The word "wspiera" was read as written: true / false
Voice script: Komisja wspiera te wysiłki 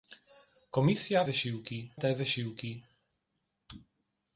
false